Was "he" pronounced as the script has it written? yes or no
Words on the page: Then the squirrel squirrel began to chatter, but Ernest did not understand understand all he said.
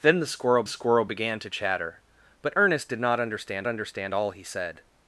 yes